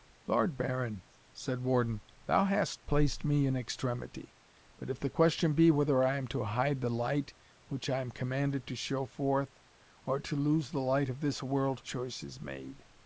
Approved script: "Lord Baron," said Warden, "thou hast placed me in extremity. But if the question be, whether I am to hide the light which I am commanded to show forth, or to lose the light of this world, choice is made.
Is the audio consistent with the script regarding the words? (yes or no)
yes